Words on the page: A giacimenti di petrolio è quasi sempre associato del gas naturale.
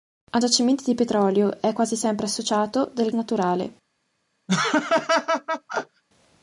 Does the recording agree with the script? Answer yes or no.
no